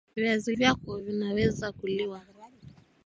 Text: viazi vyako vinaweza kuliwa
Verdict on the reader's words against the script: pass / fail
pass